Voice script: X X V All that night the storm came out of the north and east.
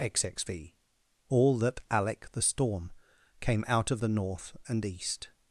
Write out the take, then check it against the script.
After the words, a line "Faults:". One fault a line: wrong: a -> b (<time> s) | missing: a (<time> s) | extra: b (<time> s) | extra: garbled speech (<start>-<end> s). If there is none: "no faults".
X X V All that alec the storm came out of the north and east.
Faults:
wrong: night -> alec (1.9 s)